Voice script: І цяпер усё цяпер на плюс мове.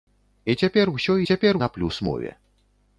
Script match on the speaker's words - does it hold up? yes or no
yes